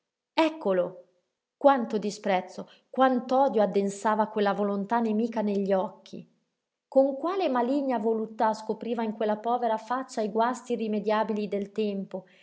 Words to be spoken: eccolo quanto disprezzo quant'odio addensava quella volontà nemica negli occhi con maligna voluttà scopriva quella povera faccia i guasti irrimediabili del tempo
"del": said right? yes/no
yes